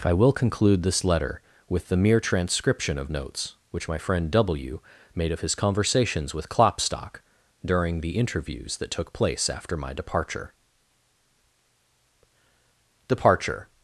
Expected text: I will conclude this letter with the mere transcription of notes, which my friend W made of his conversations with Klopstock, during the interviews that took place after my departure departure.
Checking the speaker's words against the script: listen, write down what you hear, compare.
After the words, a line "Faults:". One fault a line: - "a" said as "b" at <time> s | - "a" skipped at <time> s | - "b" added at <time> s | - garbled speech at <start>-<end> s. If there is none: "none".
I will conclude this letter with the mere transcription of notes, which my friend W made of his conversations with Klopstock, during the interviews that took place after my departure departure.
Faults:
none